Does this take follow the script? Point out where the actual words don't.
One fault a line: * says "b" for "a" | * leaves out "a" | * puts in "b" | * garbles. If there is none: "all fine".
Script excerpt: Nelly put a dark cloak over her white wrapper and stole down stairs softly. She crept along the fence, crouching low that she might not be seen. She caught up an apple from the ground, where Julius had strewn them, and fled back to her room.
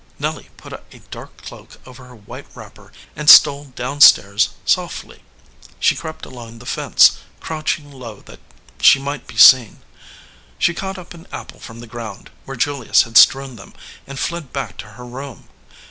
* leaves out "not"